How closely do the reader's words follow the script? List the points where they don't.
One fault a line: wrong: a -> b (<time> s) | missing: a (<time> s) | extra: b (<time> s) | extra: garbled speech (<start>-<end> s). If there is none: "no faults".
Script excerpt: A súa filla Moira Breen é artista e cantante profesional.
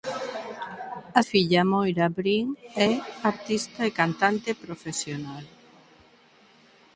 missing: súa (1.2 s)